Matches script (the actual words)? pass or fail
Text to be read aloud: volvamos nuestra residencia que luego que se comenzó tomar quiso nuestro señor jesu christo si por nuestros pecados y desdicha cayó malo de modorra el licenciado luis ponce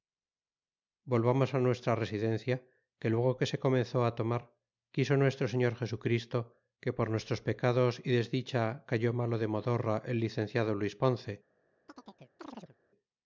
fail